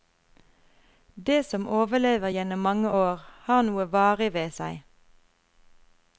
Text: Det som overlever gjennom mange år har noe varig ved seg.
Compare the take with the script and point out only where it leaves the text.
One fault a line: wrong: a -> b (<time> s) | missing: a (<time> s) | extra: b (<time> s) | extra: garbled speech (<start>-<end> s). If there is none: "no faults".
no faults